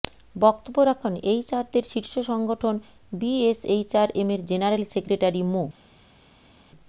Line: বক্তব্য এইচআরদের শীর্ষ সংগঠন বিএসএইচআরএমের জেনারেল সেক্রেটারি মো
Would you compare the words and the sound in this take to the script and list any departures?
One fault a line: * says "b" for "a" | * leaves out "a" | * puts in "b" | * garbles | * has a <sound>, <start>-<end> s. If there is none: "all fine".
* puts in "রাখেন"